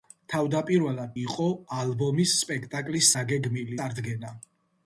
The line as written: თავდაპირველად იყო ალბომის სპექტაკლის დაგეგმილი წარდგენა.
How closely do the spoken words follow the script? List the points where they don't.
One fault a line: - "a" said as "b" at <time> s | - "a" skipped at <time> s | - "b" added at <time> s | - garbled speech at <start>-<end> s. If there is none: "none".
none